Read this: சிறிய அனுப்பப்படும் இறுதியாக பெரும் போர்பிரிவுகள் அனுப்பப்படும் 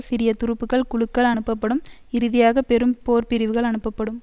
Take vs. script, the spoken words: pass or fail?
fail